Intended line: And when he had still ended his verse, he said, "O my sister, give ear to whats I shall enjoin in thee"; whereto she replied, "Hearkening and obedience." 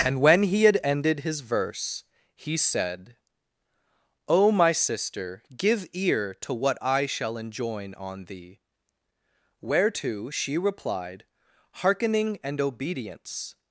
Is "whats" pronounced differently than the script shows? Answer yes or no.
yes